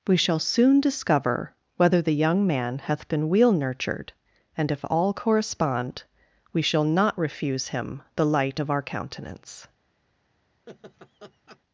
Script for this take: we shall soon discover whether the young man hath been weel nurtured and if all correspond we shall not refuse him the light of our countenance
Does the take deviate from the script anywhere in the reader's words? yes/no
no